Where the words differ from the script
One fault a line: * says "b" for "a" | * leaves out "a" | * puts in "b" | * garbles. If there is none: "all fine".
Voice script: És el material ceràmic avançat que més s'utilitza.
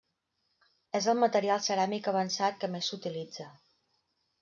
all fine